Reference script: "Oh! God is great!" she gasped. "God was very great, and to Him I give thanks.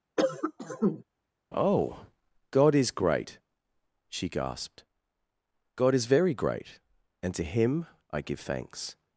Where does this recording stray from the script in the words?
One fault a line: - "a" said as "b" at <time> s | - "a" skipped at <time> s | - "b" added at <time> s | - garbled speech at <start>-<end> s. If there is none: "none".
- "was" said as "is" at 5.9 s